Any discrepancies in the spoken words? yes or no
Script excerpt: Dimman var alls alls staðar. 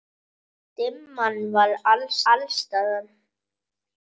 no